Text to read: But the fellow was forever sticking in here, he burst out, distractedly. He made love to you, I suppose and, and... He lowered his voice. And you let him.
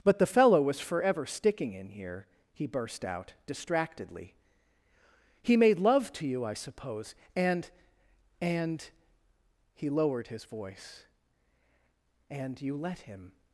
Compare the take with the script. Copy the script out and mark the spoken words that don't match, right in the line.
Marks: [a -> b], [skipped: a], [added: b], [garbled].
But the fellow was forever sticking in here, he burst out, distractedly. He made love to you, I suppose and, and... He lowered his voice. And you let him.